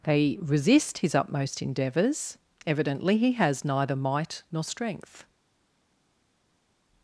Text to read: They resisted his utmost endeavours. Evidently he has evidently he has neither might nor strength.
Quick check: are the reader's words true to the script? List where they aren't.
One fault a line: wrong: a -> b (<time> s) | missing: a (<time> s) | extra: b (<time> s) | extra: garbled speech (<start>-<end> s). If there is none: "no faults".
wrong: resisted -> resist (0.4 s)
missing: evidently he has (3.6 s)